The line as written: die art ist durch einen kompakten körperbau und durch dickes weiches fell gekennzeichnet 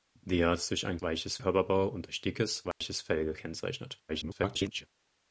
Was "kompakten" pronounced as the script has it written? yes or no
no